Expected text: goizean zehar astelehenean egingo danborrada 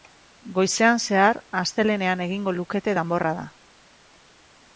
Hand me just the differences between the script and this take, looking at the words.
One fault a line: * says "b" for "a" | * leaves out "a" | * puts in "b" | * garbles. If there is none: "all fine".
* puts in "lukete"